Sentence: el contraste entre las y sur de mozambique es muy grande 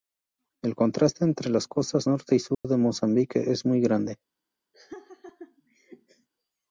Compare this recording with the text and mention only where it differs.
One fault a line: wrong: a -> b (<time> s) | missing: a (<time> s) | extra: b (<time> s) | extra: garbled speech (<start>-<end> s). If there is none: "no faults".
extra: costas norte (1.7 s)